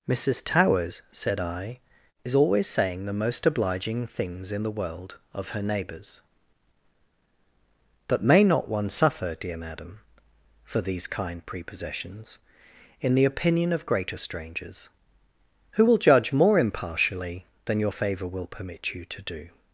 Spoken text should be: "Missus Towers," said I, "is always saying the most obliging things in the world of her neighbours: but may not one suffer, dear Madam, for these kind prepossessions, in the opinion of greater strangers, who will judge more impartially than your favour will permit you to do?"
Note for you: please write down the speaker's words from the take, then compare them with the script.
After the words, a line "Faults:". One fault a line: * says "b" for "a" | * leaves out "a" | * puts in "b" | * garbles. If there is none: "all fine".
"Missus Towers," said I, "is always saying the most obliging things in the world of her neighbours: but may not one suffer, dear Madam, for these kind prepossessions, in the opinion of greater strangers, who will judge more impartially than your favour will permit you to do?"
Faults:
all fine